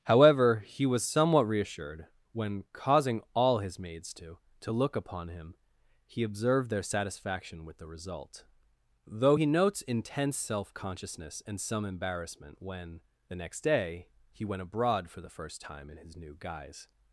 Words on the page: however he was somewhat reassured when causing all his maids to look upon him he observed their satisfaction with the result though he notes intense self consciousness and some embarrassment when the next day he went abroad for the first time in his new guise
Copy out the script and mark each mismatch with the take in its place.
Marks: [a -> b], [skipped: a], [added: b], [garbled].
however he was somewhat reassured when causing all his maids to [added: to] look upon him he observed their satisfaction with the result though he notes intense self consciousness and some embarrassment when the next day he went abroad for the first time in his new guise